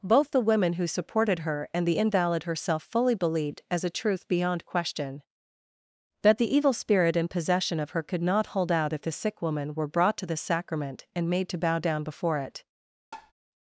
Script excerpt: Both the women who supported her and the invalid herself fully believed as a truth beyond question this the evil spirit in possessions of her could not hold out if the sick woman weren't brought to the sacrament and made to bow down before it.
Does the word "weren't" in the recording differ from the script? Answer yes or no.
yes